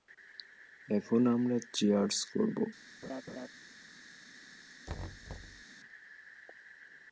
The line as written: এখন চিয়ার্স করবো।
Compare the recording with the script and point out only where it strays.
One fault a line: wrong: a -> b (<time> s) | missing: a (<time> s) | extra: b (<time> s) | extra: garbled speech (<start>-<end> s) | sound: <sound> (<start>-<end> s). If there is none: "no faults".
extra: আমরা (1.3 s)
sound: laugh (3.0-3.5 s)
sound: thud (4.9-5.6 s)